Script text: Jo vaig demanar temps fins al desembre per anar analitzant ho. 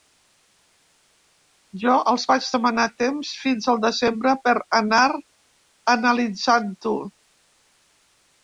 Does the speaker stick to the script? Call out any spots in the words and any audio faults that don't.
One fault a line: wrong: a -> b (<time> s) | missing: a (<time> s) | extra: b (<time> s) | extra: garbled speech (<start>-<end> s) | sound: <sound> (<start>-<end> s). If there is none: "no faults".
extra: els (2.1 s)